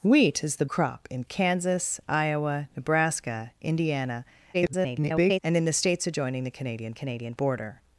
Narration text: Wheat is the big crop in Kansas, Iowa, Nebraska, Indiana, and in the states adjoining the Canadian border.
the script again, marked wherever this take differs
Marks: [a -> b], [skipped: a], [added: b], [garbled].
Wheat is the [skipped: big] crop in Kansas, Iowa, Nebraska, Indiana, [garbled] and in the states adjoining the Canadian [added: Canadian] border.